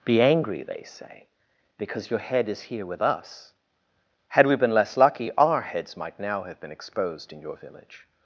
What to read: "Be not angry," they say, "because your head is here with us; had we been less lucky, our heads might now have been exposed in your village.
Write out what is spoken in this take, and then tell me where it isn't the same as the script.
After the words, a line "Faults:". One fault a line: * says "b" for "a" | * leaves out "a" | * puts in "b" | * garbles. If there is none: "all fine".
"Be angry," they say, "because your head is here with us; had we been less lucky, our heads might now have been exposed in your village.
Faults:
* leaves out "not"